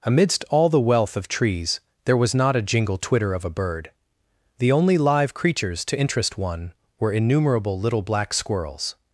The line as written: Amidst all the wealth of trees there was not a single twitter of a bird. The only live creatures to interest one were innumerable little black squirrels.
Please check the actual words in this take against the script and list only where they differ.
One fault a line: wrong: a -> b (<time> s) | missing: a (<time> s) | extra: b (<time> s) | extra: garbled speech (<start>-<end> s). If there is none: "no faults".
wrong: single -> jingle (2.6 s)